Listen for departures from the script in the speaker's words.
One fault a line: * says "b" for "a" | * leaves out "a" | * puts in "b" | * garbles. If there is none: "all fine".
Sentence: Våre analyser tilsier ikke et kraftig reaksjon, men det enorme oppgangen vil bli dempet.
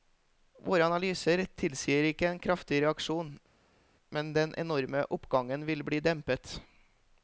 * says "en" for "et"
* says "den" for "det"